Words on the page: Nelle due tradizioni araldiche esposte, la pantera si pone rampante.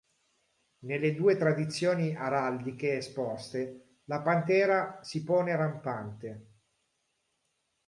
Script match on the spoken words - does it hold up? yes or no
yes